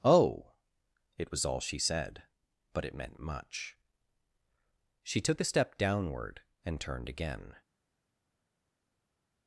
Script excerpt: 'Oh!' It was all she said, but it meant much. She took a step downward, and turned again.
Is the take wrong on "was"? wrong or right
right